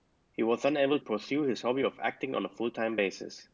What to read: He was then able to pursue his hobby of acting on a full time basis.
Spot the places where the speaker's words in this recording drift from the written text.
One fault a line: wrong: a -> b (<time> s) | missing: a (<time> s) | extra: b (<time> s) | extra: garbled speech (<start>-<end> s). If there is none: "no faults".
missing: to (1.0 s)